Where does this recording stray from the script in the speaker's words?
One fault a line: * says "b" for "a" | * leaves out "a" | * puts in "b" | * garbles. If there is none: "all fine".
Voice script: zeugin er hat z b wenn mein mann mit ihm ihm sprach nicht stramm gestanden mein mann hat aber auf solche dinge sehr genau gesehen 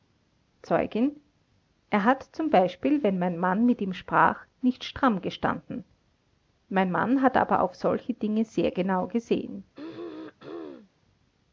* leaves out "ihm"